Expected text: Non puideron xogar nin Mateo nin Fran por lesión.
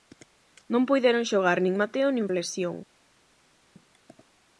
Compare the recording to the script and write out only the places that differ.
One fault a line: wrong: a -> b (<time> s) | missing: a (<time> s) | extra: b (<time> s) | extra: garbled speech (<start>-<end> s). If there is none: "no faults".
missing: Fran por (2.3 s)